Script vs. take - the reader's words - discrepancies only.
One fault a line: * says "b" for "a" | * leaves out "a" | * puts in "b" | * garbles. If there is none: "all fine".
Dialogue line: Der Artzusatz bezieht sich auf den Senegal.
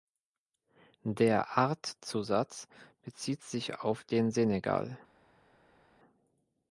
all fine